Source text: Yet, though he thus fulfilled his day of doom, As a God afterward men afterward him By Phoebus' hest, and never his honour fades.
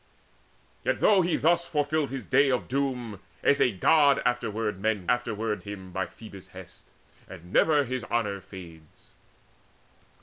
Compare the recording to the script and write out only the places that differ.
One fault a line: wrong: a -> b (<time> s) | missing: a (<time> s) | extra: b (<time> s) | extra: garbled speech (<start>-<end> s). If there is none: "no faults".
no faults